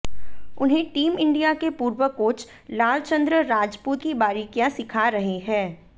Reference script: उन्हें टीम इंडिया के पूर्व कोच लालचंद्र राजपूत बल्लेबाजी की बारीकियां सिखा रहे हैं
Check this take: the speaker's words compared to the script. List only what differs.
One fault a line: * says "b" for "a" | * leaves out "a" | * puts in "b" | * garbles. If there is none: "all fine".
* leaves out "बल्लेबाजी"